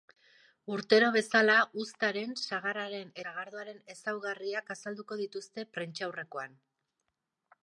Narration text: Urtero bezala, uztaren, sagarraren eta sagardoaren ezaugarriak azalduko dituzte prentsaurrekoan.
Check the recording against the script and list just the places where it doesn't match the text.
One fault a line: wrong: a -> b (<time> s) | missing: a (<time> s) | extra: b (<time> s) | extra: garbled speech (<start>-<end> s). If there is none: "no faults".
missing: eta (3.1 s)